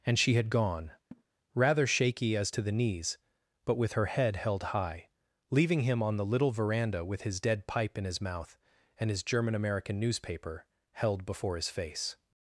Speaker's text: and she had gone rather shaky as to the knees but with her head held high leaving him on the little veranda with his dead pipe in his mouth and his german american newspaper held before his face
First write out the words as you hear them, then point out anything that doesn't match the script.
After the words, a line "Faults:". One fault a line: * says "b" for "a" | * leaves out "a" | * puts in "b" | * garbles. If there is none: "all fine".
and she had gone rather shaky as to the knees but with her head held high leaving him on the little veranda with his dead pipe in his mouth and his german american newspaper held before his face
Faults:
all fine